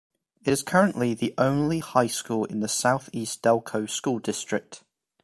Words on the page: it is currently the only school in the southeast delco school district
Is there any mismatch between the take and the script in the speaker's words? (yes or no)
yes